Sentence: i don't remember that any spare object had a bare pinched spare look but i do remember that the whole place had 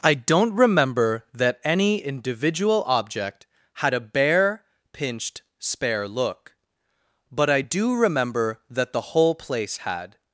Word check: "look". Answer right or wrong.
right